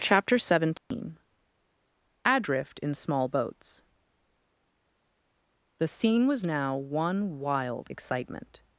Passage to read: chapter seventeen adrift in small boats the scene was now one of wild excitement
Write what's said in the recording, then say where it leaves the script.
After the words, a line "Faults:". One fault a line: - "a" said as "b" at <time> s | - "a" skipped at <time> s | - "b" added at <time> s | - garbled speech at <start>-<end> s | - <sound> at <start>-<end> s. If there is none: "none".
chapter seventeen adrift in small boats the scene was now one wild excitement
Faults:
- dropout at 0.8-0.9 s
- "of" skipped at 7.4 s